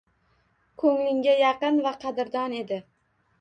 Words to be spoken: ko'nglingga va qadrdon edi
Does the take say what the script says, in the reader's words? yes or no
no